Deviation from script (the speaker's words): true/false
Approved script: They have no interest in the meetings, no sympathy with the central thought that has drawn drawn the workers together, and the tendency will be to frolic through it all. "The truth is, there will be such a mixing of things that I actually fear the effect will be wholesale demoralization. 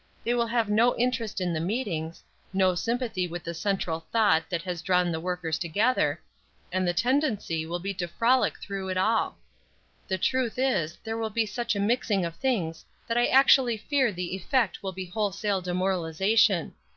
true